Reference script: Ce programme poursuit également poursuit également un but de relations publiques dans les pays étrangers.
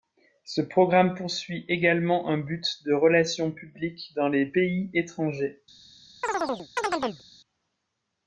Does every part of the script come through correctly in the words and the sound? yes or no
no